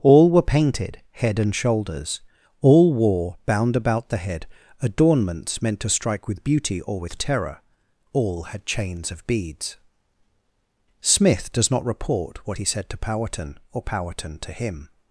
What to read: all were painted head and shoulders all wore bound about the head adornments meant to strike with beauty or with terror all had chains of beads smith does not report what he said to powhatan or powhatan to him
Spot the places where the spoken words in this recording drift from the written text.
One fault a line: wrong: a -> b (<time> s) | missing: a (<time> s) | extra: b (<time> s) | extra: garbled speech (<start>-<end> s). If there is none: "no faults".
no faults